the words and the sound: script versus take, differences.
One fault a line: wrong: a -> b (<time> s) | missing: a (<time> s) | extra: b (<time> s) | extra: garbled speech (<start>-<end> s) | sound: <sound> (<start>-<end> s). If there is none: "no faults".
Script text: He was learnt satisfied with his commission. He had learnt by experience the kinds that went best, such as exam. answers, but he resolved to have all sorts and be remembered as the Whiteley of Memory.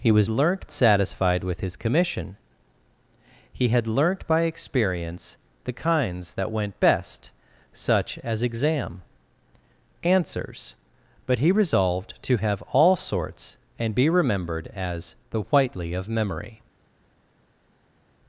no faults